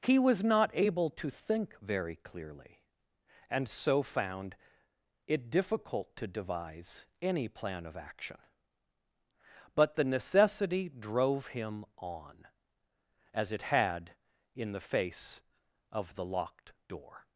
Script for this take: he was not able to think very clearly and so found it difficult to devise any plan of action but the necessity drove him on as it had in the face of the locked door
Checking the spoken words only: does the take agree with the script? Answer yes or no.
yes